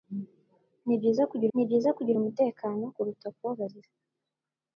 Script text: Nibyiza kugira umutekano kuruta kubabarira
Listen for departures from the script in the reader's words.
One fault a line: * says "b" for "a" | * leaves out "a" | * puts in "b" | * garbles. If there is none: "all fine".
* puts in "nibyiza kugira"